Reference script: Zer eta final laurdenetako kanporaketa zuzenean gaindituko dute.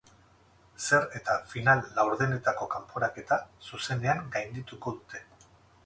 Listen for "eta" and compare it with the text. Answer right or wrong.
right